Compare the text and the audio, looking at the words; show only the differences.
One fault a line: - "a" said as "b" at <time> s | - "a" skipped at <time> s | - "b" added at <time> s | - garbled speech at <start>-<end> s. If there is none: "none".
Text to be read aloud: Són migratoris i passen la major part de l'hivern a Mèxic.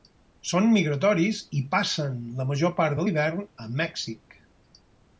none